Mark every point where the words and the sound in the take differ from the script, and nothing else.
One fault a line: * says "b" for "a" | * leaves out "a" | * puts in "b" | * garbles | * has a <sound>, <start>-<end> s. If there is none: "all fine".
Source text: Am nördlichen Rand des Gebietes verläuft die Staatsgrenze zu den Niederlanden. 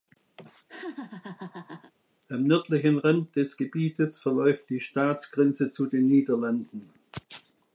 * has a laugh, 0.4-1.9 s